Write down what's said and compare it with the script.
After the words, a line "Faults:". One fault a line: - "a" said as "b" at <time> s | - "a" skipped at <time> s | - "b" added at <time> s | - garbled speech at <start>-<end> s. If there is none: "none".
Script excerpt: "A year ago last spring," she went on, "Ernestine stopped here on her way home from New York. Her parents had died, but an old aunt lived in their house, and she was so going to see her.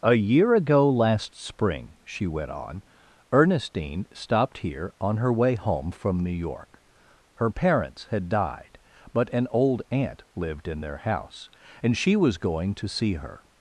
"A year ago last spring," she went on, "Ernestine stopped here on her way home from New York. Her parents had died, but an old aunt lived in their house, and she was going to see her.
Faults:
- "so" skipped at 12.4 s